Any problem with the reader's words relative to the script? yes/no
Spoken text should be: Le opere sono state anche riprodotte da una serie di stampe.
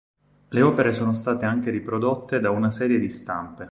no